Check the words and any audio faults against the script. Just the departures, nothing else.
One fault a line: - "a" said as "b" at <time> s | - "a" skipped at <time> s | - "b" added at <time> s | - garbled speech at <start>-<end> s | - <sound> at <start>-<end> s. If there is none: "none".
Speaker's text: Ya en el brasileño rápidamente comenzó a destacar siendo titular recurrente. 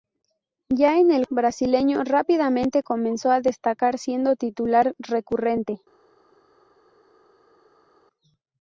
none